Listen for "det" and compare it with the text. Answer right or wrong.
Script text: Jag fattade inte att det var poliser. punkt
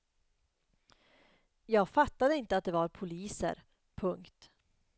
right